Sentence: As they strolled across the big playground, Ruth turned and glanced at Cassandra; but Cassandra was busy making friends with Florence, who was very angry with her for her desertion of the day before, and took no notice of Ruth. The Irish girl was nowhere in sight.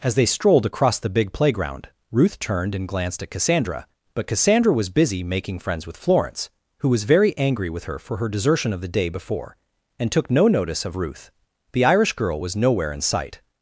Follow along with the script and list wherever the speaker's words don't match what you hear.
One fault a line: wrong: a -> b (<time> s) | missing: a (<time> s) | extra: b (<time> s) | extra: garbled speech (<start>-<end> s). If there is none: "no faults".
no faults